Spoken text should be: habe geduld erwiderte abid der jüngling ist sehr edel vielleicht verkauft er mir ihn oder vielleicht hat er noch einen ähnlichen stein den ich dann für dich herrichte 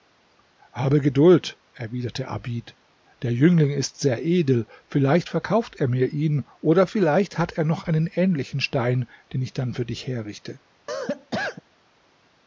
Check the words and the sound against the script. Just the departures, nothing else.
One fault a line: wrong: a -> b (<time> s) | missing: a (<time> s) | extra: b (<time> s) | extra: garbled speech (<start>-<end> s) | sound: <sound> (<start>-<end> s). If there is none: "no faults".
sound: cough (10.9-11.6 s)